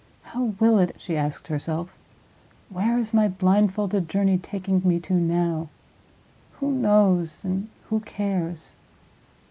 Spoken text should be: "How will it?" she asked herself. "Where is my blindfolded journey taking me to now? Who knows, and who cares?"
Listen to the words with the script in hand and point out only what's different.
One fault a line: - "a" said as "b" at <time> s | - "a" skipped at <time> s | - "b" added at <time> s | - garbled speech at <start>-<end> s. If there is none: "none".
none